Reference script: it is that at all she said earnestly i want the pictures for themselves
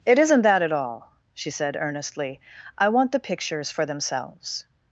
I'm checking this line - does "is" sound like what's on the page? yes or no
no